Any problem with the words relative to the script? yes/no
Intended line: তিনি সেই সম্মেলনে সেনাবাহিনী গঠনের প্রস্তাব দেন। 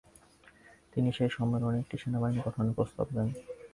yes